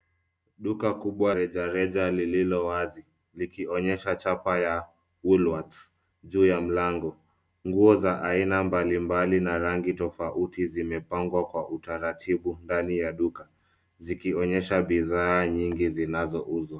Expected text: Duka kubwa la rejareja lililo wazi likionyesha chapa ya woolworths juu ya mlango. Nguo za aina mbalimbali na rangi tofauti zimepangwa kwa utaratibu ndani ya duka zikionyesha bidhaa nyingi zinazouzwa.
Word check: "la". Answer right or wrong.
wrong